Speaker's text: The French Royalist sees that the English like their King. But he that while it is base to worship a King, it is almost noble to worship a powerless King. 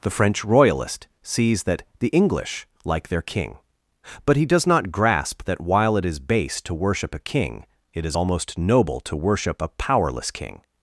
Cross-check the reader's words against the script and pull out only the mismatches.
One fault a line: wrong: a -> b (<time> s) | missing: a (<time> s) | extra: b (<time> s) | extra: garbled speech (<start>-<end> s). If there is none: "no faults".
extra: does not grasp (4.5 s)